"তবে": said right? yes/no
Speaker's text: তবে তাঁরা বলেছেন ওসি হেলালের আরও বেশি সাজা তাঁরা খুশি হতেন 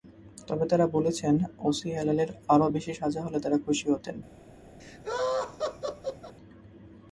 yes